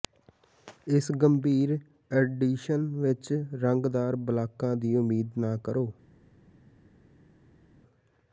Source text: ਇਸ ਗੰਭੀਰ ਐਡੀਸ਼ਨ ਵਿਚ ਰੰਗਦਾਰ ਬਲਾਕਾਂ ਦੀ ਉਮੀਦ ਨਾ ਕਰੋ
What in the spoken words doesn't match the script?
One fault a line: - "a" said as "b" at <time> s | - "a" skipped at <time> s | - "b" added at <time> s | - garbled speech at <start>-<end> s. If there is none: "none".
none